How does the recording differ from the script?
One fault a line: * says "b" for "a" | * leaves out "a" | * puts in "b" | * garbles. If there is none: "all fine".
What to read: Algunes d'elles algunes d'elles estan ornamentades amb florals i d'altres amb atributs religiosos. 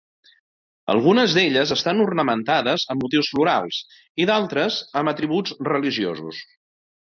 * leaves out "algunes d'elles"
* puts in "motius"